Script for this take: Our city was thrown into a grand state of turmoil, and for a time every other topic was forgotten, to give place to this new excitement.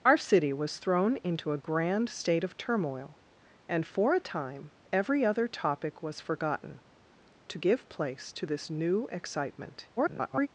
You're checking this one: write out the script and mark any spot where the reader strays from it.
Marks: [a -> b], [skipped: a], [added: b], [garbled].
Our city was thrown into a grand state of turmoil, and for a time every other topic was forgotten, to give place to this new excitement. [garbled]